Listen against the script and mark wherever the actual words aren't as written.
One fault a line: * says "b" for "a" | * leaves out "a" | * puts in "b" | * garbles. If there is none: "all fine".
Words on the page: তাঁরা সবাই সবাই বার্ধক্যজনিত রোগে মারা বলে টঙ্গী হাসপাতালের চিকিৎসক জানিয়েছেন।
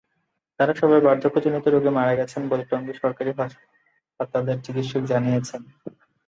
* leaves out "সবাই"
* puts in "গেছেন"
* puts in "সরকারি"